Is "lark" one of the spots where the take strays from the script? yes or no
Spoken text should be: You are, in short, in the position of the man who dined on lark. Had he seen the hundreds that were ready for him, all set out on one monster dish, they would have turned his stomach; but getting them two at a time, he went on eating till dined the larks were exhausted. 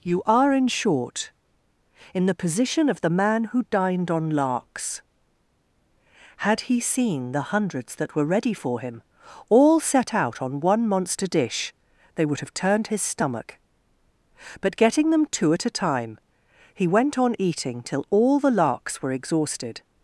yes